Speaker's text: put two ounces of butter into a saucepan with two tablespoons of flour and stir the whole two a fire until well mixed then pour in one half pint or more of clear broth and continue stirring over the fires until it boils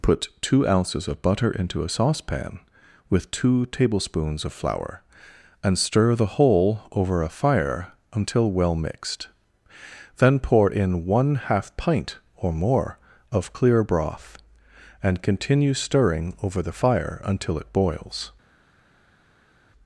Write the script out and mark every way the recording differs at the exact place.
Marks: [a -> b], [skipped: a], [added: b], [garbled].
put two ounces of butter into a saucepan with two tablespoons of flour and stir the whole [two -> over] a fire until well mixed then pour in one half pint or more of clear broth and continue stirring over the [fires -> fire] until it boils